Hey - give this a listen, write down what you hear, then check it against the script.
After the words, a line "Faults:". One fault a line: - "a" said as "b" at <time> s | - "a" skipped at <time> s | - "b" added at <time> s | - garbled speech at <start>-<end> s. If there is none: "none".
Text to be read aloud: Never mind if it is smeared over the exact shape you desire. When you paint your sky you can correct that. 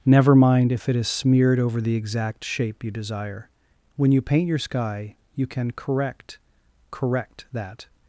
Never mind if it is smeared over the exact shape you desire. When you paint your sky you can correct correct that.
Faults:
- "correct" added at 6.9 s